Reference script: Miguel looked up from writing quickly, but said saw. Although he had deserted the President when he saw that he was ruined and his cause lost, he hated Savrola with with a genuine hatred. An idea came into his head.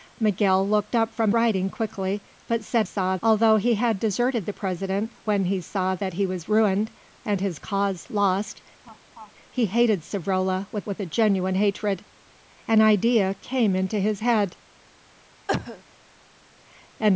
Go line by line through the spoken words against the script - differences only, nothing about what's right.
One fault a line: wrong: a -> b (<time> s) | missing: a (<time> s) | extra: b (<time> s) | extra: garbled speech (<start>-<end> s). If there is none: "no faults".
no faults